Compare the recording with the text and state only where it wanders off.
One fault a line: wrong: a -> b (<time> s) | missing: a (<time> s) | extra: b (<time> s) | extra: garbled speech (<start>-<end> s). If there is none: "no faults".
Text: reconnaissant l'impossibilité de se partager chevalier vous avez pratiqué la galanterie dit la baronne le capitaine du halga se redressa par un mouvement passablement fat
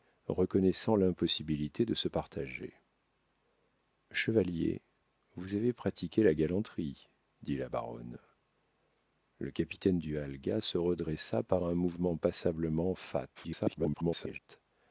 extra: garbled speech (13.4-14.4 s)